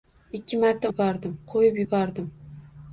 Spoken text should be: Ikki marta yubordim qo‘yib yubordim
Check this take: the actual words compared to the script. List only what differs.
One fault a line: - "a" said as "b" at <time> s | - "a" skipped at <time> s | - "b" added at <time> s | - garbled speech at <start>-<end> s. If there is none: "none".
none